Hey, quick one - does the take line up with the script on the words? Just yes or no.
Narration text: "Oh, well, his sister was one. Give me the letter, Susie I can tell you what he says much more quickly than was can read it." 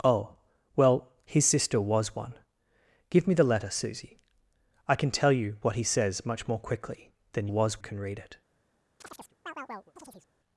yes